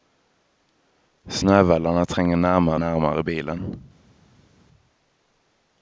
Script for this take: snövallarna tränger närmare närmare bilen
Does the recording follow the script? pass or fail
pass